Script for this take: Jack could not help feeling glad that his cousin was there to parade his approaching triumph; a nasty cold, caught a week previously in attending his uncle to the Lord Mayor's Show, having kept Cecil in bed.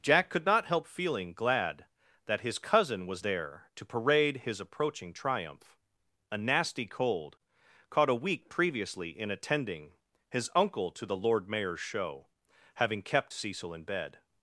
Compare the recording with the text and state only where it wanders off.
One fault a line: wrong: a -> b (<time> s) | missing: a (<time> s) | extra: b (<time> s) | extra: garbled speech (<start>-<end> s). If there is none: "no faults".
no faults